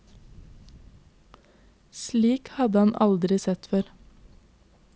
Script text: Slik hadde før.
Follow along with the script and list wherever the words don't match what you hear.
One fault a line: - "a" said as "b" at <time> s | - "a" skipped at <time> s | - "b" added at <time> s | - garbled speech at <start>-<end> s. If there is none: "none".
- "han aldri sett" added at 2.8 s